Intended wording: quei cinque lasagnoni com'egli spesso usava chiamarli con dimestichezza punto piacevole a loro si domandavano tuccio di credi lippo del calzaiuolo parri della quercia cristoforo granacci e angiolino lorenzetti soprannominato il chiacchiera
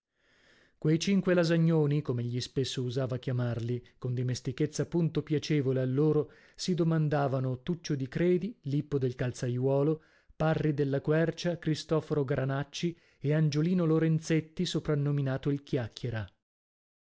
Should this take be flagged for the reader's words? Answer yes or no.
no